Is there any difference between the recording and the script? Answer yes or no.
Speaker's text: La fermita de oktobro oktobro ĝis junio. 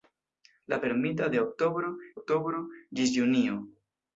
no